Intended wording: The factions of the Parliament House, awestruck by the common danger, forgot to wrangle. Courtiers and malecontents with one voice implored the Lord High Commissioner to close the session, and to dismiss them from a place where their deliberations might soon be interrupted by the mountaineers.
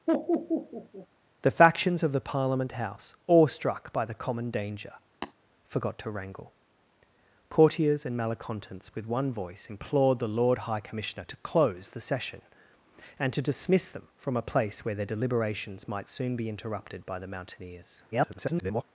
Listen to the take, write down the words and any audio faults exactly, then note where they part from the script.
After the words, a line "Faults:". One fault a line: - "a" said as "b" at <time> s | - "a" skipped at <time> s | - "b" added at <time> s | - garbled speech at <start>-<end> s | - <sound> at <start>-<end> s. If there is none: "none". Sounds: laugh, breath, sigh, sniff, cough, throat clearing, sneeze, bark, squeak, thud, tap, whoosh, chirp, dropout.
The factions of the Parliament House, awestruck by the common danger, forgot to wrangle. Courtiers and malecontents with one voice implored the Lord High Commissioner to close the session, and to dismiss them from a place where their deliberations might soon be interrupted by the mountaineers. [garbled]
Faults:
- laugh at 0.1-1.1 s
- tap at 5.2-5.3 s
- garbled speech at 18.1-18.8 s